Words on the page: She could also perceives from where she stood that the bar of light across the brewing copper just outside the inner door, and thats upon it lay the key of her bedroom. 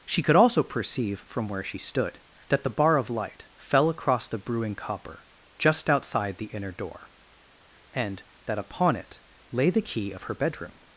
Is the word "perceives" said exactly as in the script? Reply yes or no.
no